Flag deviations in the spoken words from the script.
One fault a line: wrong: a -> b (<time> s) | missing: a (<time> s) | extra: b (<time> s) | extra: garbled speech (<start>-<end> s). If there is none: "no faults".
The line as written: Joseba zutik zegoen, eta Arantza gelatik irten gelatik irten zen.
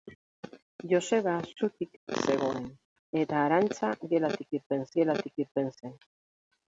no faults